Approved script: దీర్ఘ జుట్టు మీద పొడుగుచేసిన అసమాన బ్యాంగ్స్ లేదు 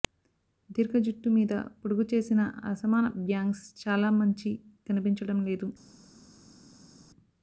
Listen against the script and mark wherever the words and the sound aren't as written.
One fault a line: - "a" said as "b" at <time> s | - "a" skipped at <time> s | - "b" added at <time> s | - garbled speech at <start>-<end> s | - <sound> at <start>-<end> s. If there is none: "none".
- "చాలా మంచి కనిపించడం" added at 3.8 s